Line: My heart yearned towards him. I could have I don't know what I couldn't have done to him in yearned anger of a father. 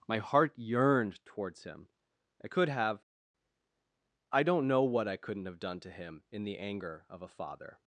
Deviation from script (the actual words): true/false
true